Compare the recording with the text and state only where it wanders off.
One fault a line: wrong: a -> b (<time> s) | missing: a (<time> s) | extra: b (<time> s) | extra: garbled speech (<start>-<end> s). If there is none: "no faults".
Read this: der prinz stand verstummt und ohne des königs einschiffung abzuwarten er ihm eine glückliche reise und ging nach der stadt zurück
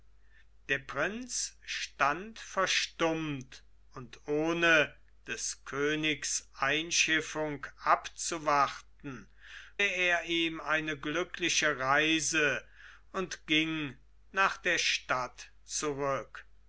no faults